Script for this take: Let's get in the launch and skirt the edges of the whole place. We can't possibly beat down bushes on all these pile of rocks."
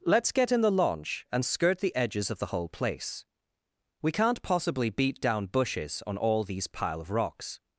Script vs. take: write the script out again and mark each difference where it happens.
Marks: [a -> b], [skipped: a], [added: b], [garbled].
Let's get in the launch and skirt the edges of the whole place. We can't possibly beat down bushes on all these pile of rocks."